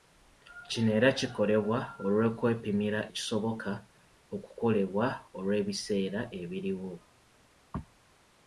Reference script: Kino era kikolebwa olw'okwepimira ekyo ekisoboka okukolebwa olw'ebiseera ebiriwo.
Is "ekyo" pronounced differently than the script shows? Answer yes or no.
yes